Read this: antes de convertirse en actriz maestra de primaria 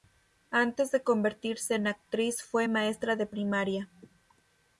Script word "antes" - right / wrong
right